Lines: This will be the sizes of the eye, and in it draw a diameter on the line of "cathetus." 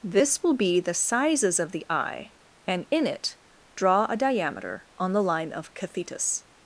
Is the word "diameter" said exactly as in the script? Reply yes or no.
yes